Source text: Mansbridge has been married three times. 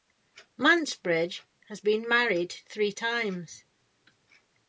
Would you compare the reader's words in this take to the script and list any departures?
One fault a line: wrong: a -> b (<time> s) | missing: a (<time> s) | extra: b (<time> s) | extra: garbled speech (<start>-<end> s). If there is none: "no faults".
no faults